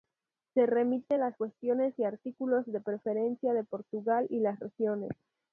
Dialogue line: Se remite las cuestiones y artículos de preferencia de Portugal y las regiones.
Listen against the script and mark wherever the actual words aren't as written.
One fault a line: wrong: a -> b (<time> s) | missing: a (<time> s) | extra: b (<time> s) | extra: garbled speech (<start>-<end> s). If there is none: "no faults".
no faults